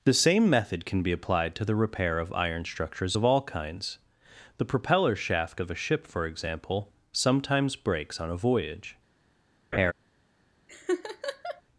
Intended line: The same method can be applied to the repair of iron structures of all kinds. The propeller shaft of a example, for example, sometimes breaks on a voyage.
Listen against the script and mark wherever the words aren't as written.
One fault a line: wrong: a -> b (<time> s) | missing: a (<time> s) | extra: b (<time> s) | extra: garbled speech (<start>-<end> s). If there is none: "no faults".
wrong: example -> ship (5.7 s)